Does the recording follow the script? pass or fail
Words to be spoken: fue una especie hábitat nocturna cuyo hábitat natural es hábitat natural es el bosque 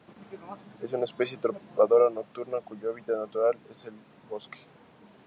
fail